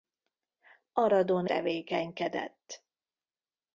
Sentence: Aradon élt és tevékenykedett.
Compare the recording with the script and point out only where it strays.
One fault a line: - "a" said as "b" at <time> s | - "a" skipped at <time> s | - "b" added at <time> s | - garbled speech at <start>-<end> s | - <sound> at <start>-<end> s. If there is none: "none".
- "élt és" skipped at 1.4 s